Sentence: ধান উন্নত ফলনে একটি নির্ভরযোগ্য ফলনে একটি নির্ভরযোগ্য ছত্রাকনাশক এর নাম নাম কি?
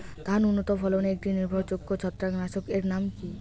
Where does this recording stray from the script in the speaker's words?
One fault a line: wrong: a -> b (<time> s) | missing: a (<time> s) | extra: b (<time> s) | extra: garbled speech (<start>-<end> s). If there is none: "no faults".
missing: ফলনে একটি নির্ভরযোগ্য (1.9 s)
missing: নাম (3.0 s)